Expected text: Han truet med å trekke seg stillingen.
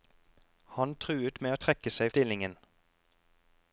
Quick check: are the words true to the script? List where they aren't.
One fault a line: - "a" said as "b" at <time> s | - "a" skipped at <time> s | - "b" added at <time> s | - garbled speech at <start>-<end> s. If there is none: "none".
none